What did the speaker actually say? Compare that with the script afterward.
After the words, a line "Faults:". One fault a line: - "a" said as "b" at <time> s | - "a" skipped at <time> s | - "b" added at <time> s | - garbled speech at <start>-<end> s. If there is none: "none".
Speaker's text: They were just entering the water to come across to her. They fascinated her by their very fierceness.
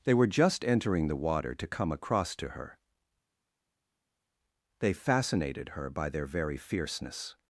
They were just entering the water to come across to her. They fascinated her by their very fierceness.
Faults:
none